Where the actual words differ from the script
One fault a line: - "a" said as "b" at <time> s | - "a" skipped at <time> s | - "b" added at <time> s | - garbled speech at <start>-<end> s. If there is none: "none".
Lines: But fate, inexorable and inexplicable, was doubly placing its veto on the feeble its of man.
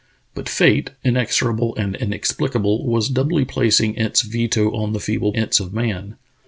none